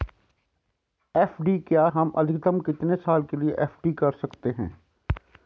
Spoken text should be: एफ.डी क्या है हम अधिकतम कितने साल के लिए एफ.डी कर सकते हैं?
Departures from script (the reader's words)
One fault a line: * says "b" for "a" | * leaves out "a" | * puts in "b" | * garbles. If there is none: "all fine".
* leaves out "है"